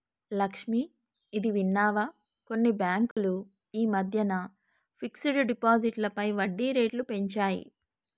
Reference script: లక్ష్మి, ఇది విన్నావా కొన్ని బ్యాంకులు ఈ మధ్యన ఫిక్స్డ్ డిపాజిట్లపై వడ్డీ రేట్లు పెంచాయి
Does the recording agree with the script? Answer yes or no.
yes